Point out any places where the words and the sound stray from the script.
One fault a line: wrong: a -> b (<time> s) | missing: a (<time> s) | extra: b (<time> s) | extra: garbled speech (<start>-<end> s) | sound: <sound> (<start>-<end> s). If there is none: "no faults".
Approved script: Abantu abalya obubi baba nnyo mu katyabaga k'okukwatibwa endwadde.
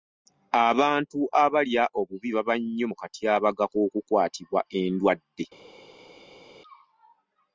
no faults